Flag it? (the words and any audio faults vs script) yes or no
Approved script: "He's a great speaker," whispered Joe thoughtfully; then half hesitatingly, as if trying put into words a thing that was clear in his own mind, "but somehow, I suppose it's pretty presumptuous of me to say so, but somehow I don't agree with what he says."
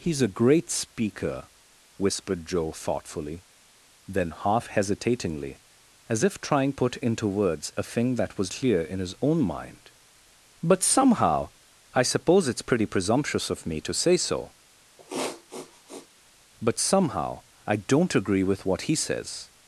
yes